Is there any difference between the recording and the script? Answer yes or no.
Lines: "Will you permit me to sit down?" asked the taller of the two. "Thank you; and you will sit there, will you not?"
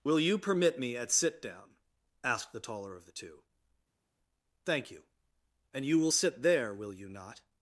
yes